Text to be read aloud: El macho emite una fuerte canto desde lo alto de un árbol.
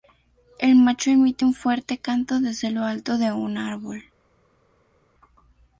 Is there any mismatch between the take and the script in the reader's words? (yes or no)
yes